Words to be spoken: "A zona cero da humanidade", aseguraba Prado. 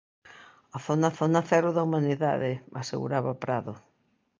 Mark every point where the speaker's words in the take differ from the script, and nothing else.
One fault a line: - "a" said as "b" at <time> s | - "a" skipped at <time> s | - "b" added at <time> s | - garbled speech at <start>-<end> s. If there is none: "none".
- "zona" added at 1.2 s